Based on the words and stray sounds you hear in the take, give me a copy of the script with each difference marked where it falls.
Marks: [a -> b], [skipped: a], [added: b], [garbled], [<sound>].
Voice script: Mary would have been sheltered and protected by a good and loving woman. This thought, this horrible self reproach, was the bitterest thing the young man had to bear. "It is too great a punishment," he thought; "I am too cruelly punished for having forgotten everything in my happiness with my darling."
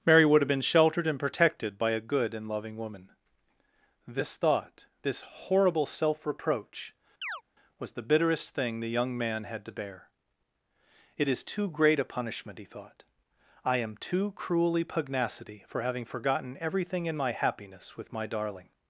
Mary would have been sheltered and protected by a good and loving woman. This thought, this horrible self reproach, [chirp] was the bitterest thing the young man had to bear. "It is too great a punishment," he thought; "I am too cruelly [punished -> pugnacity] for having forgotten everything in my happiness with my darling."